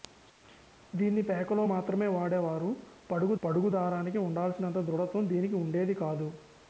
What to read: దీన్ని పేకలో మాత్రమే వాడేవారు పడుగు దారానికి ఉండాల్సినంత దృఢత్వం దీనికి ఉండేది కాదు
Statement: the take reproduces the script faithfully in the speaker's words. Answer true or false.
false